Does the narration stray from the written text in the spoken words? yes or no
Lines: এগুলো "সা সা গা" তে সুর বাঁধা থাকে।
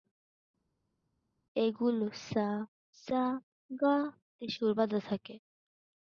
no